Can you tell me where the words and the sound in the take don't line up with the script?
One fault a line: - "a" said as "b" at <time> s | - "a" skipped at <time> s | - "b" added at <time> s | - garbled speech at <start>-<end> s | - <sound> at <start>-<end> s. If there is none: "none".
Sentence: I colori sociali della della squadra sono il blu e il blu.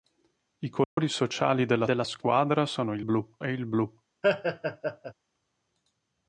- dropout at 0.8-1.0 s
- laugh at 4.2-5.1 s